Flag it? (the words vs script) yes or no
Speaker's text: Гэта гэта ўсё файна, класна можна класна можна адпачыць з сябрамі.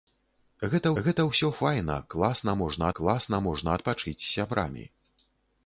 no